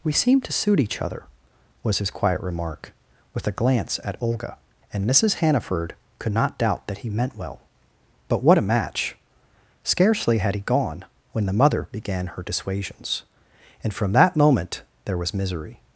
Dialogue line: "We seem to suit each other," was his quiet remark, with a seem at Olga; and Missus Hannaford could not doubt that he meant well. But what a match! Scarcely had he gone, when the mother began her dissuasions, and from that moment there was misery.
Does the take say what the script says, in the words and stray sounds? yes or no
no